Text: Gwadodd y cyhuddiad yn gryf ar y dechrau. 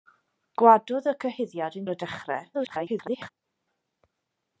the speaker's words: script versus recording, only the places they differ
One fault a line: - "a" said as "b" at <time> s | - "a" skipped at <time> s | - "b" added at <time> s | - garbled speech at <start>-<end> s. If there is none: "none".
- "gryf" skipped at 1.9 s
- garbled speech at 2.5-3.3 s